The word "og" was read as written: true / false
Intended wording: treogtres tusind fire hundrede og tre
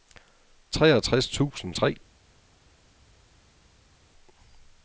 false